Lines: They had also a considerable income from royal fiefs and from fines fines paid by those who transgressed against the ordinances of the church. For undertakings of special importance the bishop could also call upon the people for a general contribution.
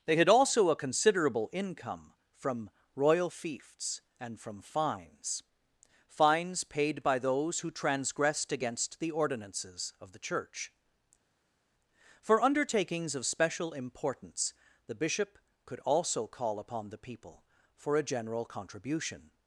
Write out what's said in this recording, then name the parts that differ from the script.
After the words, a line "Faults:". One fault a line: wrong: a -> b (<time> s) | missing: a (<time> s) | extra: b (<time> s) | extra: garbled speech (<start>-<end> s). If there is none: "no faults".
They had also a considerable income from royal fiefs and from fines fines paid by those who transgressed against the ordinances of the church. For undertakings of special importance the bishop could also call upon the people for a general contribution.
Faults:
no faults